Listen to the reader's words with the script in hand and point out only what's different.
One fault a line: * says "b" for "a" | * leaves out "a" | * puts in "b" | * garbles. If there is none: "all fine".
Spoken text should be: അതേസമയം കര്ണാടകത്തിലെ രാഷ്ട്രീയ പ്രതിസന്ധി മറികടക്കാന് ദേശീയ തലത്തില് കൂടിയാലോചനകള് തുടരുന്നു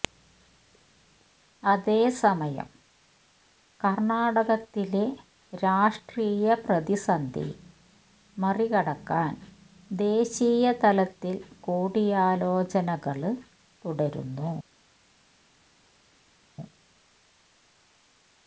all fine